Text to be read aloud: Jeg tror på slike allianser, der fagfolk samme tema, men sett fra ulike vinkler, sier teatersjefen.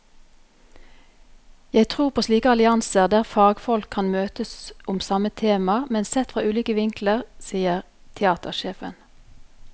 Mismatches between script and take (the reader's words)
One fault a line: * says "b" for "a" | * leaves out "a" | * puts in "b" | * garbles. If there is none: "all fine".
* puts in "kan møtes om"